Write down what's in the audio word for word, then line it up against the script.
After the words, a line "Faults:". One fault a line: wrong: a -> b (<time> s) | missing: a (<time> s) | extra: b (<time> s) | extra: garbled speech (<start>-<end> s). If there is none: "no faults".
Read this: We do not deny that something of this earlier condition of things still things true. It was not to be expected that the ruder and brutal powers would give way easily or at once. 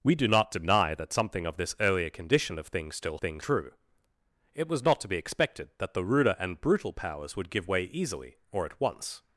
We do not deny that something of this earlier condition of things still things true. It was not to be expected that the ruder and brutal powers would give way easily or at once.
Faults:
no faults